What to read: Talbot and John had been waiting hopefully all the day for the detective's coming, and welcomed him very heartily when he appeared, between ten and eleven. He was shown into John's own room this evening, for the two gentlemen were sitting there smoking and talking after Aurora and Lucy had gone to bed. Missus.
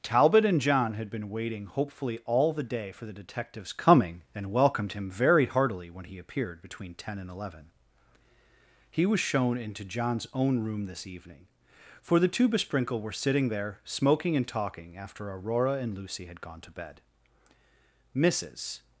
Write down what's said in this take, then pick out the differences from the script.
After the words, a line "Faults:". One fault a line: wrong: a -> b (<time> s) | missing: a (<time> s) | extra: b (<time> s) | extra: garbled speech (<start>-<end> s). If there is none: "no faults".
Talbot and John had been waiting hopefully all the day for the detective's coming, and welcomed him very heartily when he appeared, between ten and eleven. He was shown into John's own room this evening, for the two besprinkle were sitting there smoking and talking after Aurora and Lucy had gone to bed. Missus.
Faults:
wrong: gentlemen -> besprinkle (12.5 s)